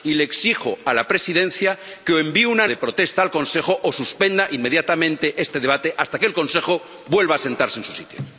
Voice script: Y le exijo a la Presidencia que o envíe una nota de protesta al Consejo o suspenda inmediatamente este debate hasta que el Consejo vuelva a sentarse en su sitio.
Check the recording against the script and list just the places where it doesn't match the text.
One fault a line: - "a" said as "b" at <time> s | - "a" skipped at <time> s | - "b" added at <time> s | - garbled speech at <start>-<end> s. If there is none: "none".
- "nota" skipped at 2.7 s